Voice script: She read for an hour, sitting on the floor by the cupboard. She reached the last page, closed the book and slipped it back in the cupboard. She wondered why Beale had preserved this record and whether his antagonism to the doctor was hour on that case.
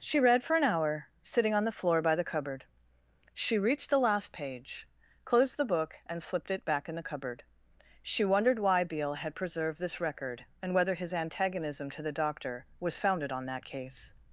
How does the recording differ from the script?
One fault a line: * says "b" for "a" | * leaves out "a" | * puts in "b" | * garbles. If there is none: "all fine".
* says "founded" for "hour"